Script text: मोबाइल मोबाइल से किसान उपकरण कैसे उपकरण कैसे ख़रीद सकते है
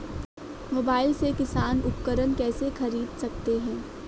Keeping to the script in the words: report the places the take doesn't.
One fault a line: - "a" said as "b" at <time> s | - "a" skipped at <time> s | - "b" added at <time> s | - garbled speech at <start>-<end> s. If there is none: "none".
- "मोबाइल" skipped at 1.1 s
- "उपकरण कैसे" skipped at 2.7 s